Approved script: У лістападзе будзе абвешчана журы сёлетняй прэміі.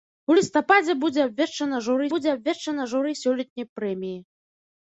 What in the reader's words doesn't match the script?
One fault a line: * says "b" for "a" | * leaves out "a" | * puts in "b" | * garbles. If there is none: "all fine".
* puts in "будзе абвешчана журы"